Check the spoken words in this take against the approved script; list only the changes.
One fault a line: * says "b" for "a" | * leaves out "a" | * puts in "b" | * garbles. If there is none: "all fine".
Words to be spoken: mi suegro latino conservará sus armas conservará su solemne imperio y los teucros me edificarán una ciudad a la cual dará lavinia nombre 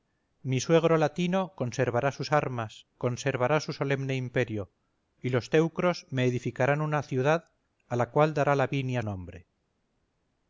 all fine